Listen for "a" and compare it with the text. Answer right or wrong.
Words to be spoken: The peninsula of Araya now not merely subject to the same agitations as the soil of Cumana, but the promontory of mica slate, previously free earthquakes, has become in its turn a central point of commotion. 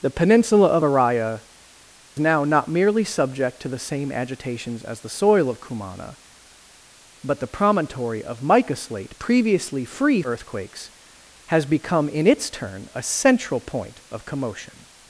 right